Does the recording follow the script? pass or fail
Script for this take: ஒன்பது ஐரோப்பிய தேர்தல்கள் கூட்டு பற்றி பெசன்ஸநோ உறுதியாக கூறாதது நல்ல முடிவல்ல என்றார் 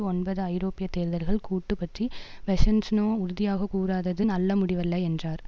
pass